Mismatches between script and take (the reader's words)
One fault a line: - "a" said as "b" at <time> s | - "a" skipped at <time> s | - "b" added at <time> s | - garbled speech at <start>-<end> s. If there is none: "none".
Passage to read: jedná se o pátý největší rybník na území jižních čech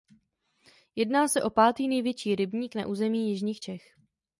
none